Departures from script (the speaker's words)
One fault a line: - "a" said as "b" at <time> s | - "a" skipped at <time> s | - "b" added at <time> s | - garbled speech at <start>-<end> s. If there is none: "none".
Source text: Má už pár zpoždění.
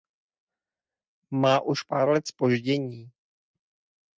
- "let" added at 2.1 s